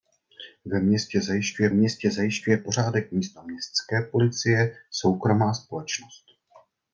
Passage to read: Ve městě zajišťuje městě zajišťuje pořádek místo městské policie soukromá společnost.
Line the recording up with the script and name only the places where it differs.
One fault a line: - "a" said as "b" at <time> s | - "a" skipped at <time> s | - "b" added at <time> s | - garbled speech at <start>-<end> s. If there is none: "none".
none